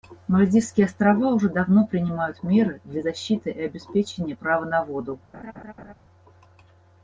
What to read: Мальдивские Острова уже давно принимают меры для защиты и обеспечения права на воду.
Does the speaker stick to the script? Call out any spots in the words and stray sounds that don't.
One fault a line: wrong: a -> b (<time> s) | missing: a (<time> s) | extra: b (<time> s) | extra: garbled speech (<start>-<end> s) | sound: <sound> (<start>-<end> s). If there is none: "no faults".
sound: laugh (5.3-5.9 s)